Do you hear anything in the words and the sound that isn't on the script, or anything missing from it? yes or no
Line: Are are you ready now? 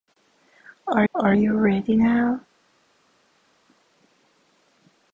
no